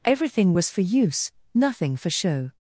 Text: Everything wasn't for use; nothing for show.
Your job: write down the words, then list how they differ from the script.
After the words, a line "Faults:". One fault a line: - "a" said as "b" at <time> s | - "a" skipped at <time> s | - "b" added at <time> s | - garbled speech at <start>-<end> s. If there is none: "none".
Everything was for use; nothing for show.
Faults:
- "wasn't" said as "was" at 0.5 s